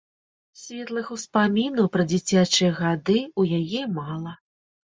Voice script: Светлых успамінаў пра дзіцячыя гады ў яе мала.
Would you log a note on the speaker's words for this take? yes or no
no